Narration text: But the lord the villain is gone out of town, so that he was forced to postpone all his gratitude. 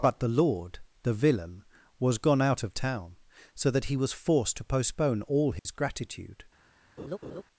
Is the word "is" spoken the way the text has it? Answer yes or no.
no